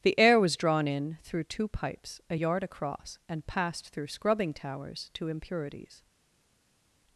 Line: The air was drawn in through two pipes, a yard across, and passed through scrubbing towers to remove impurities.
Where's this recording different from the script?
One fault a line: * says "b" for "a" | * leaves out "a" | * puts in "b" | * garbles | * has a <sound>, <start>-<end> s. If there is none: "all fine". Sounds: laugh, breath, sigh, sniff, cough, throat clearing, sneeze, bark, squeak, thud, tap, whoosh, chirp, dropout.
* leaves out "remove"